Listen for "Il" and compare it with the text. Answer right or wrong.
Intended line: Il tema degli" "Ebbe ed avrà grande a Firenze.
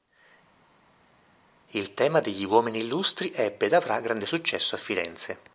right